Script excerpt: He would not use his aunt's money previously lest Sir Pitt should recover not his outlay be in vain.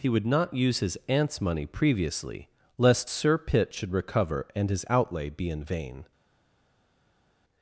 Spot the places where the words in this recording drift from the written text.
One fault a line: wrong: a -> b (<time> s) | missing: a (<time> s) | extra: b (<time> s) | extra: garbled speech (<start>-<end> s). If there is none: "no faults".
wrong: not -> and (4.5 s)